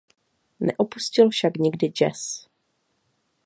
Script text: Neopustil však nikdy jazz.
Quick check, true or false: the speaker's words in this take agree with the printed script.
true